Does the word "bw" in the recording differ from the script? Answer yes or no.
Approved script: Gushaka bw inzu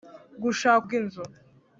no